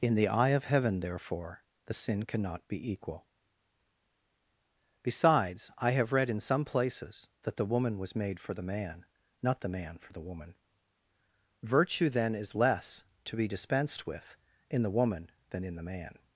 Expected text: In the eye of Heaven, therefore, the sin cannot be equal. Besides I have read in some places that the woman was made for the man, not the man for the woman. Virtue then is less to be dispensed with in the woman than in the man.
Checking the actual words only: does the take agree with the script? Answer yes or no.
yes